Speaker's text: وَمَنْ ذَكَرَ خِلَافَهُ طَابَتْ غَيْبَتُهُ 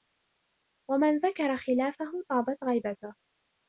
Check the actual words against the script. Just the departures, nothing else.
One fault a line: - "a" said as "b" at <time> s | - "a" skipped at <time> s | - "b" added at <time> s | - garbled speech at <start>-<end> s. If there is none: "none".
none